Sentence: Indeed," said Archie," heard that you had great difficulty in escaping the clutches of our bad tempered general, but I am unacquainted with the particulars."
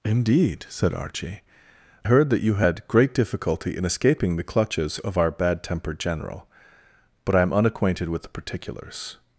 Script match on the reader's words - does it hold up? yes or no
yes